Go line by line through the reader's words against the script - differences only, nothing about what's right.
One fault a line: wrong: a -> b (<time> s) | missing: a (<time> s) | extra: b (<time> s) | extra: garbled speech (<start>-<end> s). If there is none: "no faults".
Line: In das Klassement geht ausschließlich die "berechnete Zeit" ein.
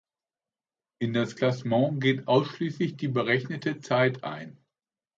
no faults